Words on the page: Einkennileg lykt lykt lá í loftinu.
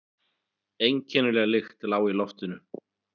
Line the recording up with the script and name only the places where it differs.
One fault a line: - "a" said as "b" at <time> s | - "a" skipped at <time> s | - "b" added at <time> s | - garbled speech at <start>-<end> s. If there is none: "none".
- "lykt" skipped at 1.9 s